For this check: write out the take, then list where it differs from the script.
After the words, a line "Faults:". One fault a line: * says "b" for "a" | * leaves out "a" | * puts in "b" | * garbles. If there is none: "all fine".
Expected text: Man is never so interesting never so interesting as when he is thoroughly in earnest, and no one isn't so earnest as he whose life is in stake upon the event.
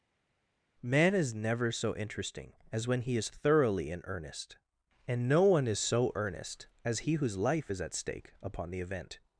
Man is never so interesting as when he is thoroughly in earnest, and no one is so earnest as he whose life is at stake upon the event.
Faults:
* leaves out "never so interesting"
* says "is" for "isn't"
* says "at" for "in"